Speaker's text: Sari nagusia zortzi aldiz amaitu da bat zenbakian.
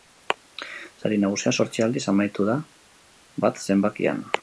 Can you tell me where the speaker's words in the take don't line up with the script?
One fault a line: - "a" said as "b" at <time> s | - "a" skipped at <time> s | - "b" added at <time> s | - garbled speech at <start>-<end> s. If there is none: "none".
none